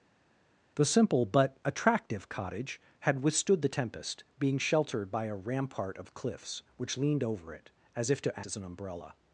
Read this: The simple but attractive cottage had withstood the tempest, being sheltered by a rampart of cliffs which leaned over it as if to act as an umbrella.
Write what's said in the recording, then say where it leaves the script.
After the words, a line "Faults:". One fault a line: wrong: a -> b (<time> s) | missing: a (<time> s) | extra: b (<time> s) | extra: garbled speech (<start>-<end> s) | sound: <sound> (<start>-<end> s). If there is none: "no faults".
The simple but attractive cottage had withstood the tempest, being sheltered by a rampart of cliffs which leaned over it as if to as an umbrella.
Faults:
missing: act (8.4 s)